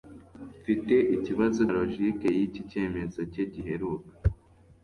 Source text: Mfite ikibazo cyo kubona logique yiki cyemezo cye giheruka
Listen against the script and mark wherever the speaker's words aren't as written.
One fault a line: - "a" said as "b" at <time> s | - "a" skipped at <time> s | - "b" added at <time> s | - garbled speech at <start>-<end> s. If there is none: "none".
- "cyo kubona" skipped at 1.6 s